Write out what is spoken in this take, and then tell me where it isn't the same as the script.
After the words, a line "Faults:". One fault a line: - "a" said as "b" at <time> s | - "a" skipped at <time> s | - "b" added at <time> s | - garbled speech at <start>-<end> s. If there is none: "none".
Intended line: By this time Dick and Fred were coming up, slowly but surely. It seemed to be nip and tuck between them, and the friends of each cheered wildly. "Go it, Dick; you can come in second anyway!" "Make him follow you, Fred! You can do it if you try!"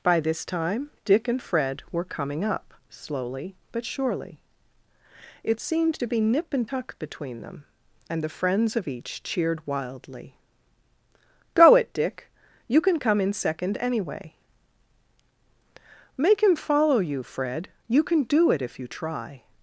By this time Dick and Fred were coming up, slowly but surely. It seemed to be nip and tuck between them, and the friends of each cheered wildly. "Go it, Dick; you can come in second anyway!" "Make him follow you, Fred! You can do it if you try!"
Faults:
none